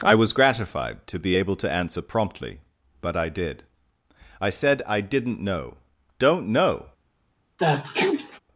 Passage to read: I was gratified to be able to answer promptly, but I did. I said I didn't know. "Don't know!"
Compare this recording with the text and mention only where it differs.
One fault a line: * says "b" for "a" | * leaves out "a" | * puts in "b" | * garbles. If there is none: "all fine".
all fine